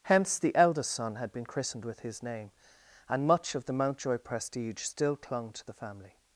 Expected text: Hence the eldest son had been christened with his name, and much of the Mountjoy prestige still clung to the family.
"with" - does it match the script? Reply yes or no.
yes